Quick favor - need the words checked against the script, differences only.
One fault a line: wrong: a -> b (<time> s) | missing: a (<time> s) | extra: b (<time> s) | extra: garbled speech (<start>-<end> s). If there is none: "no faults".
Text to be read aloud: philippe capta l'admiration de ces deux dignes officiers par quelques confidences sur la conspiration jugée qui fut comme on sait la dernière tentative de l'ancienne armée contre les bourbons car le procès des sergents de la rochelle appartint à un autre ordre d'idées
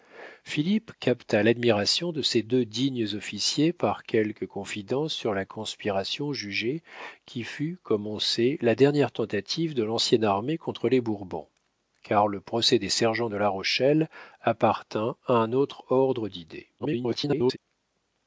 extra: garbled speech (16.8-17.6 s)